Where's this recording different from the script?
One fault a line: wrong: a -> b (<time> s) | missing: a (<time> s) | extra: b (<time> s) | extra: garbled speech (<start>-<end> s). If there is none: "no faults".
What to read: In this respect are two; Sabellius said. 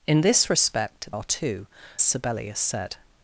no faults